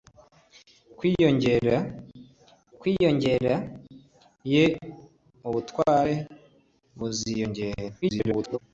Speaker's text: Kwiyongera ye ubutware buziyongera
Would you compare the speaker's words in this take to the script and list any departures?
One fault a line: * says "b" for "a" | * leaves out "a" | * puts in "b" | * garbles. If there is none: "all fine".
* puts in "kwiyongera"
* garbles